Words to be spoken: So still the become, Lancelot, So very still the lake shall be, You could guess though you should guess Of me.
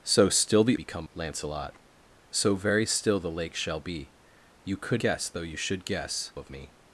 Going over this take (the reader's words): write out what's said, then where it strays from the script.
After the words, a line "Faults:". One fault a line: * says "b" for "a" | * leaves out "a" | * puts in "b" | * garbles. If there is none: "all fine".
So still the become, Lancelot, So very still the lake shall be, You could guess though you should guess Of me.
Faults:
all fine